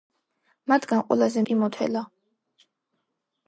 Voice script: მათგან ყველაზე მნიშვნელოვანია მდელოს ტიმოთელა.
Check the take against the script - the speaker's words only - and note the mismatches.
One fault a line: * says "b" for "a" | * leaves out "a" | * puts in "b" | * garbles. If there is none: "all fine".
* leaves out "მნიშვნელოვანია მდელოს"